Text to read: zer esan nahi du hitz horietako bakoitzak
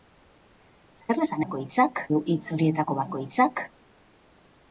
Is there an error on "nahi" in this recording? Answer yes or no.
yes